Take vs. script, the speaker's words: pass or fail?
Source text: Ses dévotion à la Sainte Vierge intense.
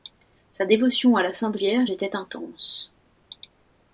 fail